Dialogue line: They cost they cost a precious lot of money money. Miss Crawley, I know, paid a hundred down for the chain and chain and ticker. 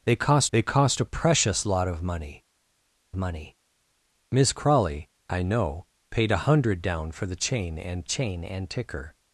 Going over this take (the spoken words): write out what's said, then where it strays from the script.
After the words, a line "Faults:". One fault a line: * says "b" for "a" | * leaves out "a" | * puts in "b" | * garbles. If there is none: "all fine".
They cost they cost a precious lot of money money. Miss Crawley, I know, paid a hundred down for the chain and chain and ticker.
Faults:
all fine